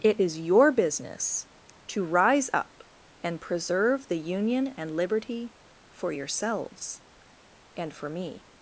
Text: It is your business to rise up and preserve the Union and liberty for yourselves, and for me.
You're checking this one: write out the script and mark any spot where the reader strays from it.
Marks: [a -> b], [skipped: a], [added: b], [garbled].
It is your business to rise up and preserve the Union and liberty for yourselves, and for me.